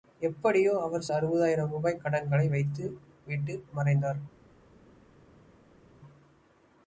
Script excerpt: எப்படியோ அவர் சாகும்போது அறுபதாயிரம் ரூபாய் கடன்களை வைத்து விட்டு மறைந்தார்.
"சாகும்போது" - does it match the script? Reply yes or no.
no